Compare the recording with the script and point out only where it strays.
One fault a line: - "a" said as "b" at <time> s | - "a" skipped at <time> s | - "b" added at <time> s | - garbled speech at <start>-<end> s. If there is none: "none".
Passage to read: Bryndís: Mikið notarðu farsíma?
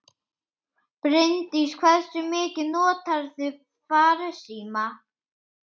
- "Hversu" added at 1.8 s